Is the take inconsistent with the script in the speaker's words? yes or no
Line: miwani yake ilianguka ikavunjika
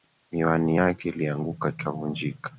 no